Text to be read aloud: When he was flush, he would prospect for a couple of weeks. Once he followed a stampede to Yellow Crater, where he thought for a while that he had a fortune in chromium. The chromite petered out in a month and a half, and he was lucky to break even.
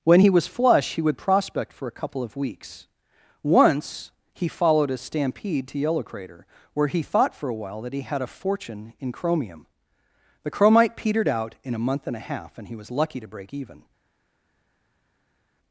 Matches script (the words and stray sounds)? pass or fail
pass